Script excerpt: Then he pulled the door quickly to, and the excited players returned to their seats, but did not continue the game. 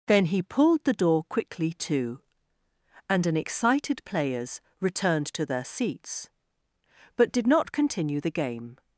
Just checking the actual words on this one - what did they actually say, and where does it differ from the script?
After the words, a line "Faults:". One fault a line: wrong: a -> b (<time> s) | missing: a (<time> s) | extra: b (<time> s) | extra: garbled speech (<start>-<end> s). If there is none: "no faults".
Then he pulled the door quickly to, and an excited players returned to their seats, but did not continue the game.
Faults:
wrong: the -> an (3.2 s)